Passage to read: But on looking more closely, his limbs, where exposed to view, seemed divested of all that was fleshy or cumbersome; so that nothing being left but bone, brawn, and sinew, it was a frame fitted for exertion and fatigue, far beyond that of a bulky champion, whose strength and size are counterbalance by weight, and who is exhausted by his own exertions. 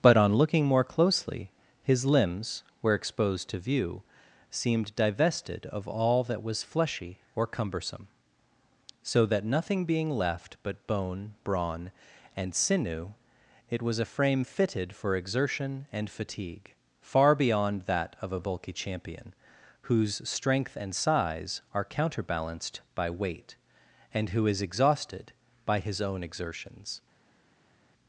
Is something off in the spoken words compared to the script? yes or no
yes